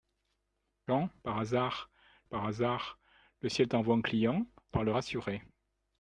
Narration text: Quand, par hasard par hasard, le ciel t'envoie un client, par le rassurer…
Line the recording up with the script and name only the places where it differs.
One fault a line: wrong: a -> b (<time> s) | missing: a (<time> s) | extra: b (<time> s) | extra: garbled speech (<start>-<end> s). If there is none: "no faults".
no faults